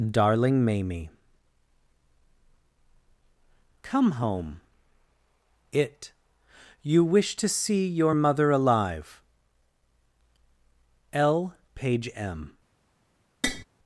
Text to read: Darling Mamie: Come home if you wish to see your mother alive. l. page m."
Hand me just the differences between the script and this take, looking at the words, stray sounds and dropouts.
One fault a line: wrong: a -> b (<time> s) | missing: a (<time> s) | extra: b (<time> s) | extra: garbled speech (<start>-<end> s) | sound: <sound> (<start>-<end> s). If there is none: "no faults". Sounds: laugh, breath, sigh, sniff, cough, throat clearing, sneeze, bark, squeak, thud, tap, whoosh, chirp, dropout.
wrong: if -> it (5.7 s)
sound: tap (13.4-13.6 s)